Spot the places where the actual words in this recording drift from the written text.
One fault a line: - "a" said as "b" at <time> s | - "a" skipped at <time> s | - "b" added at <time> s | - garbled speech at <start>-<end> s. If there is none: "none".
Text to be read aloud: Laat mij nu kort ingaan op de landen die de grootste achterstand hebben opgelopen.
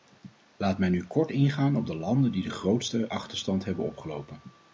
none